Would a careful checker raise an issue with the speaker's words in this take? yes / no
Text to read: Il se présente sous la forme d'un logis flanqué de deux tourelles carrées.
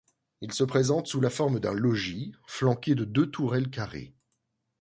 no